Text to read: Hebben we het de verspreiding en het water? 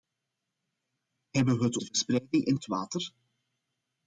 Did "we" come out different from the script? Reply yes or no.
no